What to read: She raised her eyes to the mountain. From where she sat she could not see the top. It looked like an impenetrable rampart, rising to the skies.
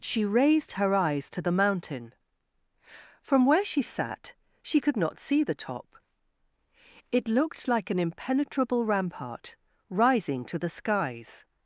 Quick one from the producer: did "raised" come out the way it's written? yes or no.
yes